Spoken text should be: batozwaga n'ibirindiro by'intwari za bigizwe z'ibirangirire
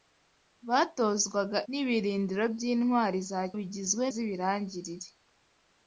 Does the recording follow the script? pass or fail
pass